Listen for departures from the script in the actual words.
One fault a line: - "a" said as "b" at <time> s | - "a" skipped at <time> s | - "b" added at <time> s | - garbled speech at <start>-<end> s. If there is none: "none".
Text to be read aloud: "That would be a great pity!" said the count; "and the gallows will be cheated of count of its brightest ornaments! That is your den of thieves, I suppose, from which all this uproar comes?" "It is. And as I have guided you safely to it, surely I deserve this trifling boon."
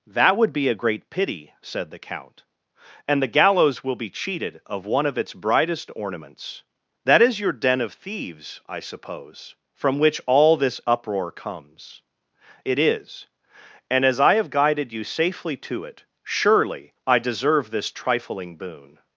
- "count" said as "one" at 4.9 s